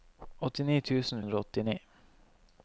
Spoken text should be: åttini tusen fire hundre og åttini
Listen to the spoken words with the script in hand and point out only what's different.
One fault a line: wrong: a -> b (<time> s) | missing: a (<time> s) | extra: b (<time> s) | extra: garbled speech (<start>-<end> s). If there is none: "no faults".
missing: fire (1.2 s)